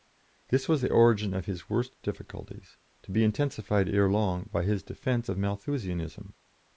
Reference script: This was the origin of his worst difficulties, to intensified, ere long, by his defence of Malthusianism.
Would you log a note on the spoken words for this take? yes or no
yes